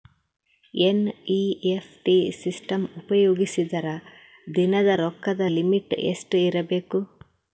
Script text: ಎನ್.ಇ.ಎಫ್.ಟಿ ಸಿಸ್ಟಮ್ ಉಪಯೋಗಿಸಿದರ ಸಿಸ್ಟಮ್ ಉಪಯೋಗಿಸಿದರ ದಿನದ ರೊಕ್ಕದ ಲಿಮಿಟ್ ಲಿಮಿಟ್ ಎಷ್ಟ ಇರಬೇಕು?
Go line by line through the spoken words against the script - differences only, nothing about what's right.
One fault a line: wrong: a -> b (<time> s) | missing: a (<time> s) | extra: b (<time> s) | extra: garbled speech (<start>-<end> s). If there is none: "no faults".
missing: ಸಿಸ್ಟಮ್ ಉಪಯೋಗಿಸಿದರ (3.9 s)
missing: ಲಿಮಿಟ್ (5.9 s)